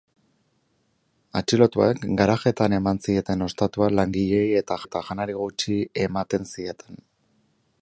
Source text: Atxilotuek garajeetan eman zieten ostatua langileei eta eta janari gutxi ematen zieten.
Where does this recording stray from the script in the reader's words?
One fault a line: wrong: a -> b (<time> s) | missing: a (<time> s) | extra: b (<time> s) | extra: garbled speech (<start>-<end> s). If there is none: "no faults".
no faults